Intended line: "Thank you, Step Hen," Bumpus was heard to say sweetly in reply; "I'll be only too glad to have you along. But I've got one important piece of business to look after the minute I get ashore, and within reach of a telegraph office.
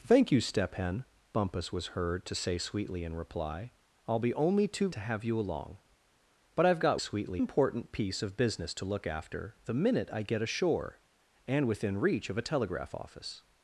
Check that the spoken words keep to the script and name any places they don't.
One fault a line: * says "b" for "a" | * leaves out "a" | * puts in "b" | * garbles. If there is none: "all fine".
* leaves out "glad"
* says "sweetly" for "one"